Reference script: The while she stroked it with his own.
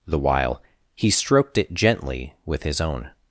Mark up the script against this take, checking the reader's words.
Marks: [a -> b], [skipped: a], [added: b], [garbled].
The while [she -> he] stroked it [added: gently] with his own.